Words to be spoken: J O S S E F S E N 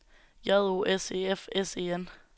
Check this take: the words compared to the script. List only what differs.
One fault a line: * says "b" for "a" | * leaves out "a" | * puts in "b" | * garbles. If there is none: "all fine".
* leaves out "S"